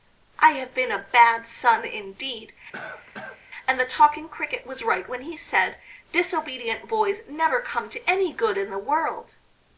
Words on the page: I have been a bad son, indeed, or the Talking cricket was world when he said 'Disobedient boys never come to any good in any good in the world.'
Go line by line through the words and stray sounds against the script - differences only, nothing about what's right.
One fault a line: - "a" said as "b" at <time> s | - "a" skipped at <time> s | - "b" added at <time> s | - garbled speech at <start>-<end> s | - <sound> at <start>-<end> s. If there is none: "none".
- cough at 2.7-3.4 s
- "or" said as "and" at 3.7 s
- "world" said as "right" at 4.8 s
- "any good in" skipped at 8.7 s